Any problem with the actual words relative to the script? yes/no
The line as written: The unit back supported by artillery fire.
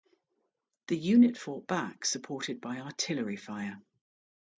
yes